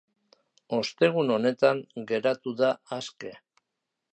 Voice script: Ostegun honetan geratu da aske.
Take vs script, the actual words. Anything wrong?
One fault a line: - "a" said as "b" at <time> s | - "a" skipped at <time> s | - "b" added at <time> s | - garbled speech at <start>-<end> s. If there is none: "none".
none